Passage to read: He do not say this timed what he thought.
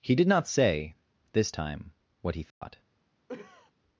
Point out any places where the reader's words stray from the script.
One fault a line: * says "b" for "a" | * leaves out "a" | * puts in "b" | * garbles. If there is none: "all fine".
* says "did" for "do"
* says "time" for "timed"